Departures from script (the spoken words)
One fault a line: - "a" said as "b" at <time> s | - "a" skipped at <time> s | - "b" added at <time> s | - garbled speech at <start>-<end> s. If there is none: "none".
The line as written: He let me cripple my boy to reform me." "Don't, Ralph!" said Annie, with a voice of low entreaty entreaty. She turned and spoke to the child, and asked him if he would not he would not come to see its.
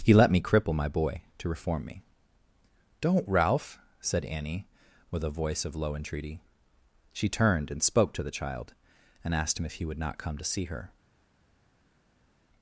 - "entreaty" skipped at 6.4 s
- "he would not" skipped at 10.2 s
- "its" said as "her" at 10.7 s